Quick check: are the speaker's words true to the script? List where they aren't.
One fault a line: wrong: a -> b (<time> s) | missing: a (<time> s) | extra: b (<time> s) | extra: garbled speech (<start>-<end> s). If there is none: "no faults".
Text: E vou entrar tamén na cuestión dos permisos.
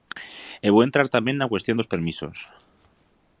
no faults